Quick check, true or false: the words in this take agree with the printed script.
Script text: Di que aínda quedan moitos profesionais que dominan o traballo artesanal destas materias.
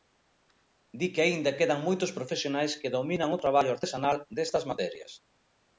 true